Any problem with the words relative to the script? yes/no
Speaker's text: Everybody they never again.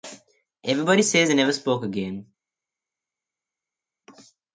yes